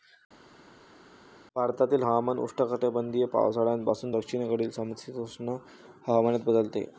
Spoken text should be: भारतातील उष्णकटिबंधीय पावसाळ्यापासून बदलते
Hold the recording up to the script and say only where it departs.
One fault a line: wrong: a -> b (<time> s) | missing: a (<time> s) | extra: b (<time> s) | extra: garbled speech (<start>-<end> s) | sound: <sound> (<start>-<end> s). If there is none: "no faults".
extra: हवामान (2.0 s)
extra: दक्षिणेकडील समशीतोष्ण हवामानात (4.1 s)